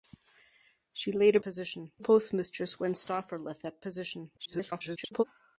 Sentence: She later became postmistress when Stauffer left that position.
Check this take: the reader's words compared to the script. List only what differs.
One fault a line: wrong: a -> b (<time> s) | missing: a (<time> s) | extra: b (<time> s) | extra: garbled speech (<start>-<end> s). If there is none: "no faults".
wrong: became -> position (1.4 s)
extra: garbled speech (4.4-5.2 s)